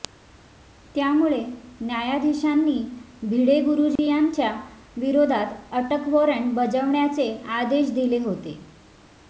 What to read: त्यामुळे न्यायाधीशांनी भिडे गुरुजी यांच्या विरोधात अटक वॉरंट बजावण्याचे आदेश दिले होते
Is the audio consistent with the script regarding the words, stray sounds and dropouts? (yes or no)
no